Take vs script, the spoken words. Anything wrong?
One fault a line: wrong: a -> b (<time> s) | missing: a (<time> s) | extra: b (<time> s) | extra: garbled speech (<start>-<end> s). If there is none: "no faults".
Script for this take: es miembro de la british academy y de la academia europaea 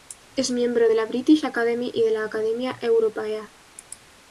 no faults